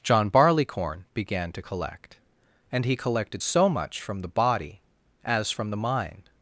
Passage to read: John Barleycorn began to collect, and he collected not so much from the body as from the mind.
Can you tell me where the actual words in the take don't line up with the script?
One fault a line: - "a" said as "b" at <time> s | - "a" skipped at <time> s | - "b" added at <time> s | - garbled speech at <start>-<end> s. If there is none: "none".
- "not" skipped at 3.4 s